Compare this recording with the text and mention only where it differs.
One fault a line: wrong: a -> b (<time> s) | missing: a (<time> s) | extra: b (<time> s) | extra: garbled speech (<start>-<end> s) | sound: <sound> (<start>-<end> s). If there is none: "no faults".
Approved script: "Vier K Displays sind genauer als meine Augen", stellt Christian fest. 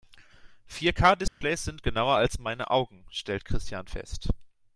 sound: dropout (1.3-1.4 s)